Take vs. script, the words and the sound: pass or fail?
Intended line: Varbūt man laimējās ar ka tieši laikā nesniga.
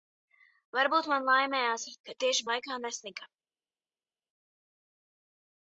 pass